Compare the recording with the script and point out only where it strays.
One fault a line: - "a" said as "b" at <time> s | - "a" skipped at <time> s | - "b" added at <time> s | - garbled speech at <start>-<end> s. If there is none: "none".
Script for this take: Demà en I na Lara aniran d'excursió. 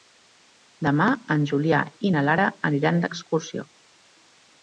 - "Julià" added at 1.5 s